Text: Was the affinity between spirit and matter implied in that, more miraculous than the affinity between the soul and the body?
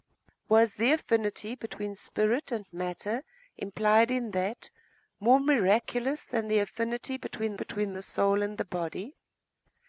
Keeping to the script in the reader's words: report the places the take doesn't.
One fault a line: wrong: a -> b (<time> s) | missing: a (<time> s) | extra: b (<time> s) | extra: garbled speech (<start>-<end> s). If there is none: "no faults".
extra: between (7.5 s)